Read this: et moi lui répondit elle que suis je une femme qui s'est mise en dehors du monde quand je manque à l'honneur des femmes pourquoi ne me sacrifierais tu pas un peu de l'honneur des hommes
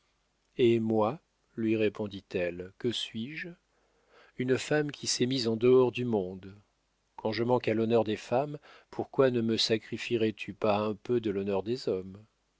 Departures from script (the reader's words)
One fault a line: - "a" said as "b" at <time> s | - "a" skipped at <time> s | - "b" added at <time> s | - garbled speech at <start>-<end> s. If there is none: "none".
none